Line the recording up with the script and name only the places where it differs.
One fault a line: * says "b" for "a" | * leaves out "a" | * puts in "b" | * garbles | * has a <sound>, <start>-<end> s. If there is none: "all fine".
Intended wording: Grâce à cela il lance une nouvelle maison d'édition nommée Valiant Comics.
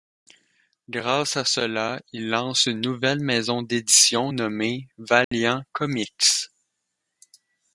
* has a dropout, 5.2-5.3 s